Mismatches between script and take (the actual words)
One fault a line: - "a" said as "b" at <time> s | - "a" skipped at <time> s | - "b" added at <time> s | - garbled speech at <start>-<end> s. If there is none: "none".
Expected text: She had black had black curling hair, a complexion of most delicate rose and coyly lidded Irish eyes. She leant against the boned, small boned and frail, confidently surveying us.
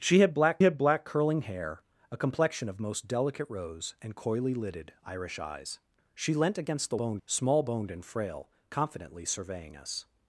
none